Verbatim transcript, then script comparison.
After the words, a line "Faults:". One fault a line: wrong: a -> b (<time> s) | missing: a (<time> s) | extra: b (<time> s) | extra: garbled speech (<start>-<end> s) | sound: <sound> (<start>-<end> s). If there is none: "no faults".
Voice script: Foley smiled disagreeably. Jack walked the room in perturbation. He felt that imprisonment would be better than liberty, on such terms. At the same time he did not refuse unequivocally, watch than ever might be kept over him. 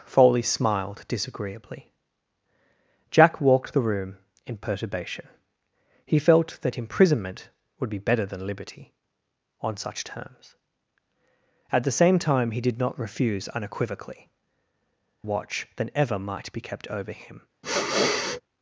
Foley smiled disagreeably. Jack walked the room in perturbation. He felt that imprisonment would be better than liberty, on such terms. At the same time he did not refuse unequivocally, watch than ever might be kept over him.
Faults:
sound: sniff (17.6-18.4 s)